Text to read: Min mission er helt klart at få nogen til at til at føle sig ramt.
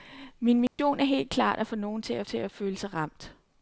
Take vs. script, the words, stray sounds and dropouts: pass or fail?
fail